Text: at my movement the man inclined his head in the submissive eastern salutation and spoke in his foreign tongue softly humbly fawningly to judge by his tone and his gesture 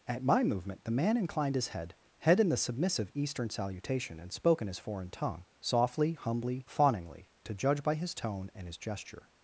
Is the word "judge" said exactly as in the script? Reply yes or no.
yes